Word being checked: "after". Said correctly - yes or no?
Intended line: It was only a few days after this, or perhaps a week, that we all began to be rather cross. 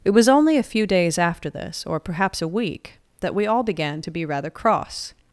yes